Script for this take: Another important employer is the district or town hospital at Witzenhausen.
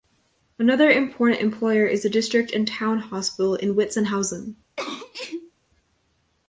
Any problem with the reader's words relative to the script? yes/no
yes